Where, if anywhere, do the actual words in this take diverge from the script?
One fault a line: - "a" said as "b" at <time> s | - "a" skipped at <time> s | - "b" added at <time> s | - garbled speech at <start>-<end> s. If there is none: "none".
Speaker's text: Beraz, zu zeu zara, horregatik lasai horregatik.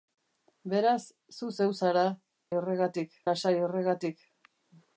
none